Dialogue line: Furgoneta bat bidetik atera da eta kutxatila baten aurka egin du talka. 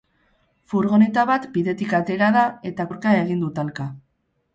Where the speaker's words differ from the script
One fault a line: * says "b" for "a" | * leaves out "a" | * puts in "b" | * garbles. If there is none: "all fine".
* leaves out "kutxatila baten"